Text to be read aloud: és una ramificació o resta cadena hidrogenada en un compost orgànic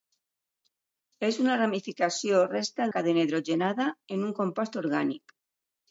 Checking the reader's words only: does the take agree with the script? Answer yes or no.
yes